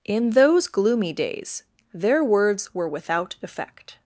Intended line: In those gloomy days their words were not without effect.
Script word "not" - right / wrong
wrong